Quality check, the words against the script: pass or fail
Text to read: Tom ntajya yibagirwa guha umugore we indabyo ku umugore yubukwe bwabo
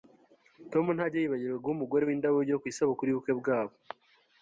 fail